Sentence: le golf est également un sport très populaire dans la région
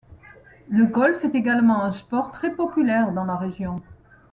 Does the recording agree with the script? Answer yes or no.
yes